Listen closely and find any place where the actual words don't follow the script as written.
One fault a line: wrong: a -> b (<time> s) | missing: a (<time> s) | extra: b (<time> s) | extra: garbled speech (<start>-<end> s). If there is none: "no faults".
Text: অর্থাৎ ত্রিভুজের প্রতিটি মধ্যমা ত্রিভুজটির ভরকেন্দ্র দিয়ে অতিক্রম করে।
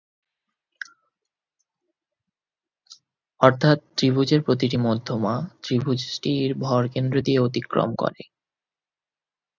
no faults